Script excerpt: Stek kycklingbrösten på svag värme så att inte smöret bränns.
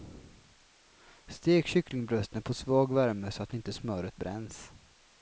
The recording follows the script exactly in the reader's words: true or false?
true